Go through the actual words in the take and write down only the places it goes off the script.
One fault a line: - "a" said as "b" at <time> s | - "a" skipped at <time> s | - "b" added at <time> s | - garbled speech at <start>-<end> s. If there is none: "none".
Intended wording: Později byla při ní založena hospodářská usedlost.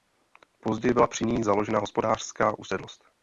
none